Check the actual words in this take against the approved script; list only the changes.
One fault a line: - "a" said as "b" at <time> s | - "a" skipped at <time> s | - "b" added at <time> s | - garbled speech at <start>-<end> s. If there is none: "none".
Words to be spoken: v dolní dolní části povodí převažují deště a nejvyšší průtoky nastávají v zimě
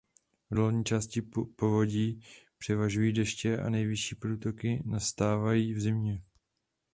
- "dolní" skipped at 0.8 s